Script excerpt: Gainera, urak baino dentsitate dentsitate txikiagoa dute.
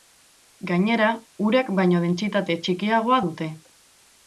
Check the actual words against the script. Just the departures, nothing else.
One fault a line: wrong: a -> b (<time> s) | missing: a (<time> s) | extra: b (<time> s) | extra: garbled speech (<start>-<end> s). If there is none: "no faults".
missing: dentsitate (2.6 s)